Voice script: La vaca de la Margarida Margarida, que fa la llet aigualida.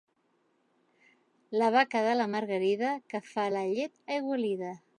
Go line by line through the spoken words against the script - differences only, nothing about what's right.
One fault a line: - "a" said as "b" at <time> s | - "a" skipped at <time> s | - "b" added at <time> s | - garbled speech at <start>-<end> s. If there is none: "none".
- "Margarida" skipped at 2.9 s